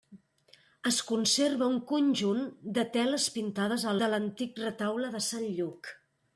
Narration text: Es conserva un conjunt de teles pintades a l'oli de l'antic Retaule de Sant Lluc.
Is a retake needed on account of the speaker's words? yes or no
yes